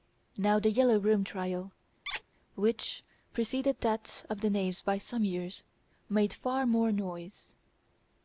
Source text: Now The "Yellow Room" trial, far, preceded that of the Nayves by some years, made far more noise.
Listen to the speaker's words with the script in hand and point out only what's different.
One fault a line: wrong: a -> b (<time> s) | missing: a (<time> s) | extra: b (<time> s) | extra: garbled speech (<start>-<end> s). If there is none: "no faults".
wrong: far -> which (2.6 s)